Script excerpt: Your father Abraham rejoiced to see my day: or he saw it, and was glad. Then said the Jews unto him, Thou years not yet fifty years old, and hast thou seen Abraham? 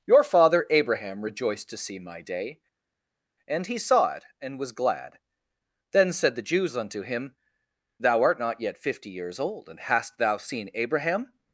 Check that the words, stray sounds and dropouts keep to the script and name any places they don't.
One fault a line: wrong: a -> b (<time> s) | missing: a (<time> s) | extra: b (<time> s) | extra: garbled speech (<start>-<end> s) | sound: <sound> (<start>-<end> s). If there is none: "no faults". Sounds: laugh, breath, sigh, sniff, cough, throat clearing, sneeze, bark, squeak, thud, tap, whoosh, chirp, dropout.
wrong: or -> and (3.5 s)
wrong: years -> art (8.2 s)